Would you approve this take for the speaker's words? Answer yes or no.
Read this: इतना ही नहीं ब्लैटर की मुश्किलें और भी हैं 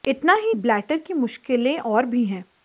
no